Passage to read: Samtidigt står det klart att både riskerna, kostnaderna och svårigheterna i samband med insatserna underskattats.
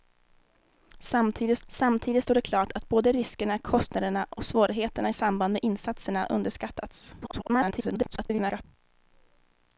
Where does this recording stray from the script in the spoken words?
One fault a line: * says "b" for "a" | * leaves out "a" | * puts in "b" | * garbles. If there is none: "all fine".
* puts in "samtidigt"
* garbles